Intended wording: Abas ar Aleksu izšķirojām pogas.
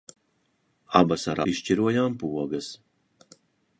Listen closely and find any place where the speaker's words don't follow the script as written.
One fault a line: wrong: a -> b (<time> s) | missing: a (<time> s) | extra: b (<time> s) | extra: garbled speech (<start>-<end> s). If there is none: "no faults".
missing: Aleksu (1.4 s)